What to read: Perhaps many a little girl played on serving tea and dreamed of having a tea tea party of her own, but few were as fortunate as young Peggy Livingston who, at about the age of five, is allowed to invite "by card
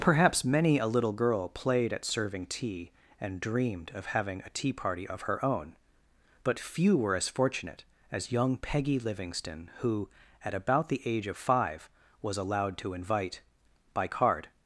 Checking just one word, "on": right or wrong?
wrong